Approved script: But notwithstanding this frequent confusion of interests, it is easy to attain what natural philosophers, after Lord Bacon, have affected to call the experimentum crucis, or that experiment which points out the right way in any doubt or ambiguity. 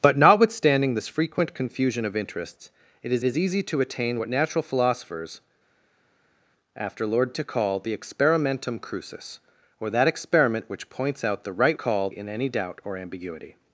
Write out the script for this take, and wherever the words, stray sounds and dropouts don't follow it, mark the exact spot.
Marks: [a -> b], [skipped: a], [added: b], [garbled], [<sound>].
But notwithstanding this frequent confusion of interests, it is [added: is] easy to attain what natural philosophers, after Lord [skipped: Bacon, have affected] to call the experimentum crucis, or that experiment which points out the right [way -> call] in any doubt or ambiguity.